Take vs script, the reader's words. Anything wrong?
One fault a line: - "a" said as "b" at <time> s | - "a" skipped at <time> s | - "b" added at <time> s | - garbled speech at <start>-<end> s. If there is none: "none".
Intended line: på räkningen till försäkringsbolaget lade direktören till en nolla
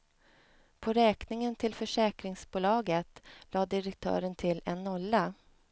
none